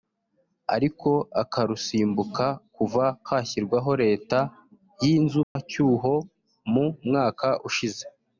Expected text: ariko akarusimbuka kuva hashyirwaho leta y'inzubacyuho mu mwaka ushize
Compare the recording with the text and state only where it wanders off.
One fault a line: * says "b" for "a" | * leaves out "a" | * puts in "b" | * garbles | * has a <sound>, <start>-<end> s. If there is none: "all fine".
* has a dropout, 5.4-5.6 s